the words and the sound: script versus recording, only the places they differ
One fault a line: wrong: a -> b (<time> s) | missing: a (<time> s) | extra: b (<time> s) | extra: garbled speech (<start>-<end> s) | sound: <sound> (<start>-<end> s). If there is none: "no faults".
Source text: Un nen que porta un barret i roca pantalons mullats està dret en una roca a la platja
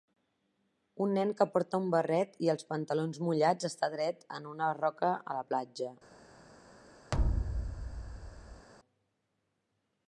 wrong: roca -> els (2.5 s)
sound: thud (7.1-8.7 s)